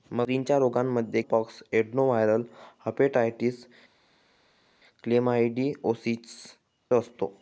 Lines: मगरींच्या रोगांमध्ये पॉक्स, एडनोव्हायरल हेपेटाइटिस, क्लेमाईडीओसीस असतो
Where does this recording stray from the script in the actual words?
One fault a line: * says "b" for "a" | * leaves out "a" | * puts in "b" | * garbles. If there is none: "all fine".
all fine